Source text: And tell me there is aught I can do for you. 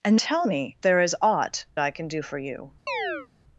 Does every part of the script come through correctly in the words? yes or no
yes